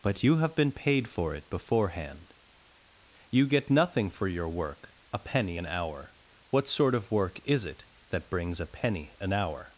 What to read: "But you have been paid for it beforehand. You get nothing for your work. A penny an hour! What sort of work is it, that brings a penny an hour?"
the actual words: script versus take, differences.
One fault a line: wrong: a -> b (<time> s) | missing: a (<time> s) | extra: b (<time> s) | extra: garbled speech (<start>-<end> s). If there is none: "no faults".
no faults